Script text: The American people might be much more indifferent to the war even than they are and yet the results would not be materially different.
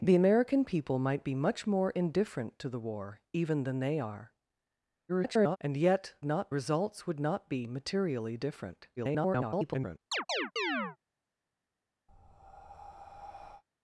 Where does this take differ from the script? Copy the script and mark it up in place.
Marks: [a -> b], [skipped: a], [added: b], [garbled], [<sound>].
The American people might be much more indifferent to the war even than they are [garbled] and yet [the -> not] results would not be materially different. [garbled] [chirp] [breath]